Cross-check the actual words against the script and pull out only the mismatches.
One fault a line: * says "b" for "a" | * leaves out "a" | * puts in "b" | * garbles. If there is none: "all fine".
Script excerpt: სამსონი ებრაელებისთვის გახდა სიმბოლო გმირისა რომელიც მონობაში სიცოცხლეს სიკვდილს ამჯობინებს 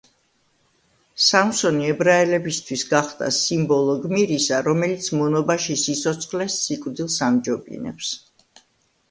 all fine